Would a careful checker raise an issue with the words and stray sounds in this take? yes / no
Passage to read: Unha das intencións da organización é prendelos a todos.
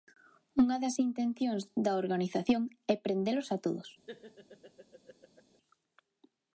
yes